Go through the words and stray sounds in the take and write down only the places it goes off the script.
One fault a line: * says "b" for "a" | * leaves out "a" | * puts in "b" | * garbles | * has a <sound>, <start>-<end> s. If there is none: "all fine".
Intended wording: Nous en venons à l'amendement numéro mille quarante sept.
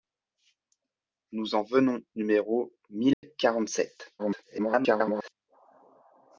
* leaves out "à l'amendement"
* has a dropout, 3.1-3.2 s
* garbles